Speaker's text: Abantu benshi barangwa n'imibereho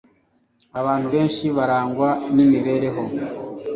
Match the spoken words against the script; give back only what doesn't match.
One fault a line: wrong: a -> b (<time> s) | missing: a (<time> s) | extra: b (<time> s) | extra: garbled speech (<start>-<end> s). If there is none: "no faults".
no faults